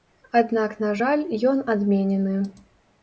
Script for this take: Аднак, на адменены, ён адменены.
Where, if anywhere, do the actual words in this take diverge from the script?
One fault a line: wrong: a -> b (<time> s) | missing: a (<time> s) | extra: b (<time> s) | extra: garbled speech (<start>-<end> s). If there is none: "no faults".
wrong: адменены -> жаль (1.0 s)